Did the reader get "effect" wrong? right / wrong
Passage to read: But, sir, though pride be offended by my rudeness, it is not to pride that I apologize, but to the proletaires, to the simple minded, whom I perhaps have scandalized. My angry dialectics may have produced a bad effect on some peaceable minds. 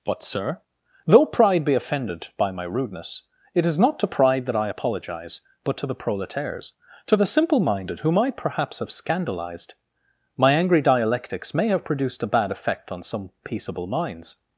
right